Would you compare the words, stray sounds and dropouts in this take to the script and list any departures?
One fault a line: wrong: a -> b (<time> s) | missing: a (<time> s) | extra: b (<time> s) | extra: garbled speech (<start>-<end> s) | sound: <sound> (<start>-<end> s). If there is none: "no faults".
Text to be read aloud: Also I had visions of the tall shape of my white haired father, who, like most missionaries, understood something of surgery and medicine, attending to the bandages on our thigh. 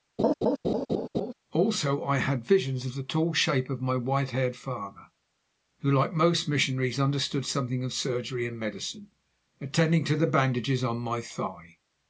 sound: laugh (0.2-1.3 s)
wrong: our -> my (11.0 s)